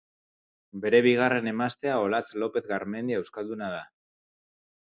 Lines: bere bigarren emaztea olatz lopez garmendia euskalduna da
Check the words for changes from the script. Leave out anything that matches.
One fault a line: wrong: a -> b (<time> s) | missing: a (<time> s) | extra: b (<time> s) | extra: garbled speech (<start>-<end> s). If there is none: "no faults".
no faults